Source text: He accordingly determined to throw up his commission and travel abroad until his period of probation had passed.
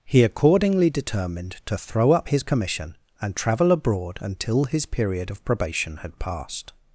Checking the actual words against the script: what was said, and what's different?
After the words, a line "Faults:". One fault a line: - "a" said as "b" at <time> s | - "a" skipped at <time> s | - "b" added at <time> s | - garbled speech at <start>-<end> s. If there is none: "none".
He accordingly determined to throw up his commission and travel abroad until his period of probation had passed.
Faults:
none